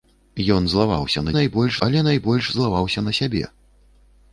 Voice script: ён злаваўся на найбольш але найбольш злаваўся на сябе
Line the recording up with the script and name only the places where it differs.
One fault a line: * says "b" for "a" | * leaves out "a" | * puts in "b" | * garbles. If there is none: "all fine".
all fine